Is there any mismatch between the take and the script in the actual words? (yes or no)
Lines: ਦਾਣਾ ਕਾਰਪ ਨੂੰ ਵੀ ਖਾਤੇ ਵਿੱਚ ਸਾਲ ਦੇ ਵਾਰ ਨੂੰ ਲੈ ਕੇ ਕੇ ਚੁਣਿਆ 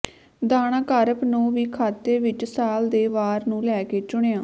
yes